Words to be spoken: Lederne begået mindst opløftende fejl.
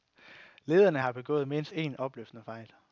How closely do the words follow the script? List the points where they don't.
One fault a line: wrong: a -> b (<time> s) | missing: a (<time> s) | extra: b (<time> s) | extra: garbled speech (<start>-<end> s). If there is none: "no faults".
extra: har (1.0 s)
extra: en (1.7 s)